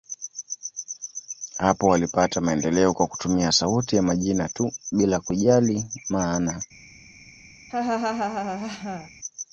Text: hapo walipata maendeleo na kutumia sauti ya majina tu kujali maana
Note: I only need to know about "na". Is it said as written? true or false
false